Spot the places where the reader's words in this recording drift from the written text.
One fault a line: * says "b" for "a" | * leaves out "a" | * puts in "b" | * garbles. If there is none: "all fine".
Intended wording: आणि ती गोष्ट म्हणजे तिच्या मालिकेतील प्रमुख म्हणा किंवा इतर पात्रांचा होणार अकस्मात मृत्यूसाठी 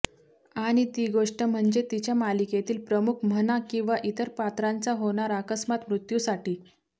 all fine